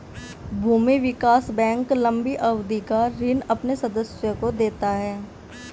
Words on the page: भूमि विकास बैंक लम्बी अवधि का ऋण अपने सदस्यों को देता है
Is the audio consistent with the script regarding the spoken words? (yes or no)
yes